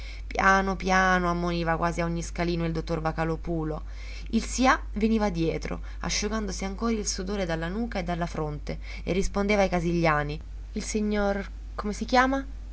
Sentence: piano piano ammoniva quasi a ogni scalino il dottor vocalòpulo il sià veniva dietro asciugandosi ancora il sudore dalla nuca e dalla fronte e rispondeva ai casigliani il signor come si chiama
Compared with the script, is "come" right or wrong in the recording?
right